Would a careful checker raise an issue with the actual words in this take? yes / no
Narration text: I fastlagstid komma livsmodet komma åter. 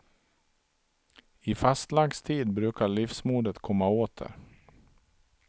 yes